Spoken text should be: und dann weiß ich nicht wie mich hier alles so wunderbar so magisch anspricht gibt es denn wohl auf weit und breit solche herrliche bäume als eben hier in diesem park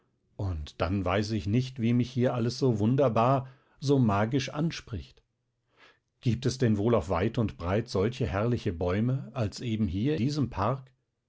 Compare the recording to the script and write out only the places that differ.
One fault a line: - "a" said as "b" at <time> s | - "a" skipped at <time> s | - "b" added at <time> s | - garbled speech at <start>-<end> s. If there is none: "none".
- "in" skipped at 10.1 s